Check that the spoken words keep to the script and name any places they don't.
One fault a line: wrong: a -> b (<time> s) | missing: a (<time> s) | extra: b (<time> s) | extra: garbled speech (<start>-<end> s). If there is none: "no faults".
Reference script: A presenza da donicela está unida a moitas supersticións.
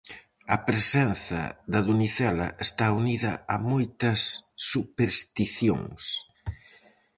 no faults